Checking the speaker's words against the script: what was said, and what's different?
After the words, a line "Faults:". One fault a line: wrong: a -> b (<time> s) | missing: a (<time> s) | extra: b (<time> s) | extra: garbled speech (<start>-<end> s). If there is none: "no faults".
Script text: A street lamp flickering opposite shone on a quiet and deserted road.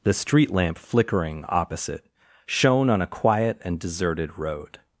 The street lamp flickering opposite shone on a quiet and deserted road.
Faults:
wrong: A -> The (0.0 s)